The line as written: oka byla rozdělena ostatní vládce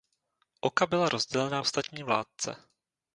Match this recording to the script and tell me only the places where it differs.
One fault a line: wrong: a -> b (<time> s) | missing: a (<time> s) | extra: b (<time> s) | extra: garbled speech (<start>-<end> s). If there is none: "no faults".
no faults